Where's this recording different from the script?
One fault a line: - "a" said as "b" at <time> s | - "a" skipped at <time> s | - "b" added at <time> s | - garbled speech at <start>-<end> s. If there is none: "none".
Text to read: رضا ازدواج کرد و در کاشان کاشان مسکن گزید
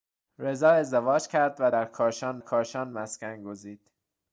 none